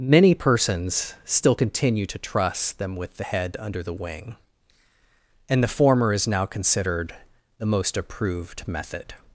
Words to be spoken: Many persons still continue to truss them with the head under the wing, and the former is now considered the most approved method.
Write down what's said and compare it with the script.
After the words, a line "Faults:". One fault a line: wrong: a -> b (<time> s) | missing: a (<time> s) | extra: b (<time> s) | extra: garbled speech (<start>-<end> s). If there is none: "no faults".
Many persons still continue to truss them with the head under the wing, and the former is now considered the most approved method.
Faults:
no faults